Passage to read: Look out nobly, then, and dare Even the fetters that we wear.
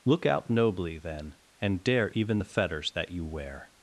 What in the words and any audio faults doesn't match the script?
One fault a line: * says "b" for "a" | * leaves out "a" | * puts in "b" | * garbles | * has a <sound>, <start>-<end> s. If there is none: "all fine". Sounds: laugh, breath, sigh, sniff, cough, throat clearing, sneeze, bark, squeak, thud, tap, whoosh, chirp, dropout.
* says "you" for "we"